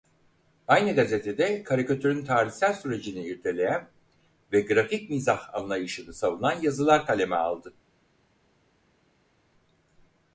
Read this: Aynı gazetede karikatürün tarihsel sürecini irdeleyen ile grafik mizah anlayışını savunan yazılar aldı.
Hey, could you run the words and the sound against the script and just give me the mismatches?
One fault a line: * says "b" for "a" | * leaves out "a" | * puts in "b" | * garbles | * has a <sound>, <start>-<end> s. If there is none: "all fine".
* says "ve" for "ile"
* puts in "kaleme"